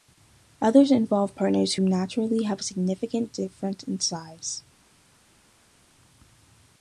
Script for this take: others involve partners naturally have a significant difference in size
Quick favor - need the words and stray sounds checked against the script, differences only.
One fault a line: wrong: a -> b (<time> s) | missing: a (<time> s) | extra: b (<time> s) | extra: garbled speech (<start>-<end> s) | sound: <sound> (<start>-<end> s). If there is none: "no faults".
no faults